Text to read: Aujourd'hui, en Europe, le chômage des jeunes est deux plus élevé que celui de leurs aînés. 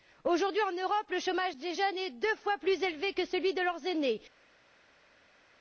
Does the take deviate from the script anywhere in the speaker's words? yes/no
yes